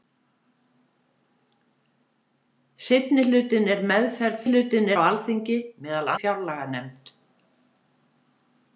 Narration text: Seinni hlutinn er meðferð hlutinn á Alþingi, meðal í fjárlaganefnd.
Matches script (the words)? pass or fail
pass